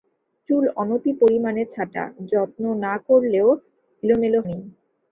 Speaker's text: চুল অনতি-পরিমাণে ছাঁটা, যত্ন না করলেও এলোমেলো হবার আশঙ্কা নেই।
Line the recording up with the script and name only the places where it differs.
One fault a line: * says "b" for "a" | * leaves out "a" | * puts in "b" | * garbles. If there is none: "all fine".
* leaves out "হবার আশঙ্কা"